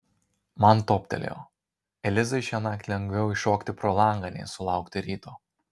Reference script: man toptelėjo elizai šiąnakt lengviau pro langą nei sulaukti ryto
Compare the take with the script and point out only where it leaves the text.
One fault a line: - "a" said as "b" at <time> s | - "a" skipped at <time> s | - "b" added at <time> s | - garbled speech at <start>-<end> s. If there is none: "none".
- "iššokti" added at 3.4 s